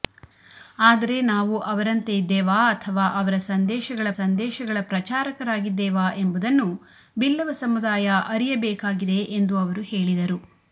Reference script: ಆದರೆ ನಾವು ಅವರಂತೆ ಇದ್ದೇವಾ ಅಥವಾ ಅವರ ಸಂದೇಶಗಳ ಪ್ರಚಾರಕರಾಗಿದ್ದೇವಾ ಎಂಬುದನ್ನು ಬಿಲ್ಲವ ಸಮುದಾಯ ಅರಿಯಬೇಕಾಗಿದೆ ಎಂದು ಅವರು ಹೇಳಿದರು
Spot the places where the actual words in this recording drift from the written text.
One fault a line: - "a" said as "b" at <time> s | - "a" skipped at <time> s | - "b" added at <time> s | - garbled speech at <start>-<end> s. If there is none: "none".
- "ಸಂದೇಶಗಳ" added at 4.2 s